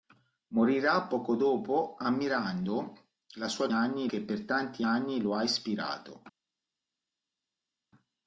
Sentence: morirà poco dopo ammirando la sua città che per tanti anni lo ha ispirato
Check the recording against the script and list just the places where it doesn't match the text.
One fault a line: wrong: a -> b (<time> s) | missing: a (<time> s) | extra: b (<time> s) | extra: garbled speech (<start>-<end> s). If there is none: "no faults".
wrong: città -> anni (3.7 s)